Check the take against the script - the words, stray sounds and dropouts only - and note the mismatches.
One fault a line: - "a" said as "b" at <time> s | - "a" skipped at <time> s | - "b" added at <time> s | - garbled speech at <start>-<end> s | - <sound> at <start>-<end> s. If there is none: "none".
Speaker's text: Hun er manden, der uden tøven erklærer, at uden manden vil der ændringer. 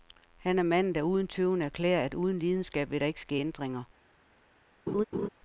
- "Hun" said as "Han" at 0.4 s
- "manden" said as "lidenskab" at 2.4 s
- "ikke ske" added at 3.1 s
- laugh at 4.9-5.3 s